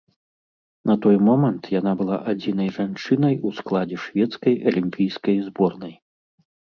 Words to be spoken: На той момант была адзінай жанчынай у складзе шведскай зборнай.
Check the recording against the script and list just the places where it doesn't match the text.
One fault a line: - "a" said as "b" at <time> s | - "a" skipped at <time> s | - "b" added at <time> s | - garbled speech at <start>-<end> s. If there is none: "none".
- "яна" added at 1.8 s
- "алімпійскай" added at 4.7 s